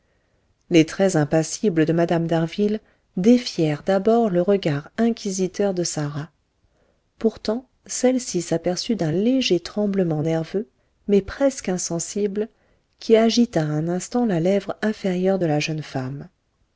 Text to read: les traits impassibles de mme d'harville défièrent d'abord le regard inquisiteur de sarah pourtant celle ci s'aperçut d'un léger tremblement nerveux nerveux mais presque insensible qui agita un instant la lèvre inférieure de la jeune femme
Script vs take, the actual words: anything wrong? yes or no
yes